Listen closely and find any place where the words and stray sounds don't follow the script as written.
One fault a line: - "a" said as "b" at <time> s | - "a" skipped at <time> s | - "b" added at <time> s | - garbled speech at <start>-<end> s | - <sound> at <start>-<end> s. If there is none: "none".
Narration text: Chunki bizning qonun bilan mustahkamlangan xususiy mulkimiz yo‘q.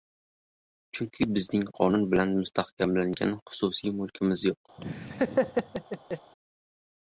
- laugh at 4.8-6.3 s